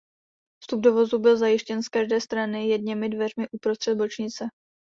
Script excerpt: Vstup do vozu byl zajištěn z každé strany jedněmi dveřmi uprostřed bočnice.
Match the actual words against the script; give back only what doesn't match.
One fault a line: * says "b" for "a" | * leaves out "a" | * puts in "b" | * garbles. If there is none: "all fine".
all fine